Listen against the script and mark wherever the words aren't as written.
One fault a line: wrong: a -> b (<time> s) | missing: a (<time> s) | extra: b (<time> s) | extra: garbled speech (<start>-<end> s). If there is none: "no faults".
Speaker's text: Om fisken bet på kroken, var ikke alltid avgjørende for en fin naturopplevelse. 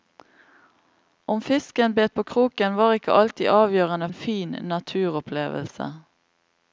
missing: for (4.1 s)